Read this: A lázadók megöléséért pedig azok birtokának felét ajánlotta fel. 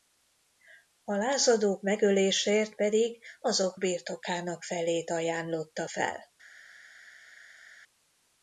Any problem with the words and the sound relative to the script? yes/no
no